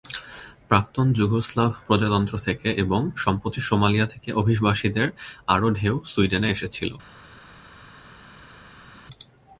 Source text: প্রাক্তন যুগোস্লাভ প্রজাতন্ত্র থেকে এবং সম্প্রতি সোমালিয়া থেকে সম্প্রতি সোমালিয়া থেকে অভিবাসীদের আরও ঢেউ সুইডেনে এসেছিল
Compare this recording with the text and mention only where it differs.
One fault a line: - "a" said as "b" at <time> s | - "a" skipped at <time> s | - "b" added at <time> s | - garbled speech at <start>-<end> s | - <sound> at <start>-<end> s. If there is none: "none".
- "সম্প্রতি সোমালিয়া থেকে" skipped at 4.3 s